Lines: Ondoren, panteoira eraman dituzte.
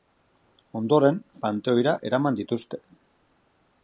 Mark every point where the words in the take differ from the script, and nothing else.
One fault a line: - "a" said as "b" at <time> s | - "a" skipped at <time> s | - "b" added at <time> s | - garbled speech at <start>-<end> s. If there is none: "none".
none